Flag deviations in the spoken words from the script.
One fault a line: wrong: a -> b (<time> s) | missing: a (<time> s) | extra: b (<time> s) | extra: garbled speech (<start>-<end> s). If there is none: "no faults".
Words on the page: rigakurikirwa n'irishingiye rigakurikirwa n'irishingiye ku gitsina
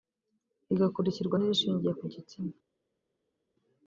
missing: rigakurikirwa n'irishingiye (1.9 s)